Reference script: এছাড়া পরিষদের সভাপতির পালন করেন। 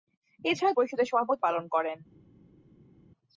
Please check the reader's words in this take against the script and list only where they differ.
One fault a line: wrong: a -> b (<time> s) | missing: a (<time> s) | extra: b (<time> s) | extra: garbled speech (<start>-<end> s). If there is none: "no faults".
no faults